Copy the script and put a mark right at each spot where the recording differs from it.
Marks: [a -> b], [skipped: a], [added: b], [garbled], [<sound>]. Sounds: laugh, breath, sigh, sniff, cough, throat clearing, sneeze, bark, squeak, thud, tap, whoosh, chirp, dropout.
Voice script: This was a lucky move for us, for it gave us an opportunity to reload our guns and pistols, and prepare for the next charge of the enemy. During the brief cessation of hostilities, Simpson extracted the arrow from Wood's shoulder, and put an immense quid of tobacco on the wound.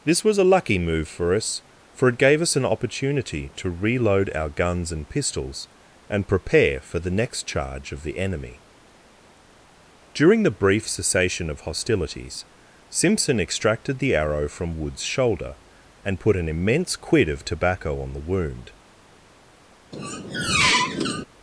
This was a lucky move for us, for it gave us an opportunity to reload our guns and pistols, and prepare for the next charge of the enemy. During the brief cessation of hostilities, Simpson extracted the arrow from Wood's shoulder, and put an immense quid of tobacco on the wound. [squeak]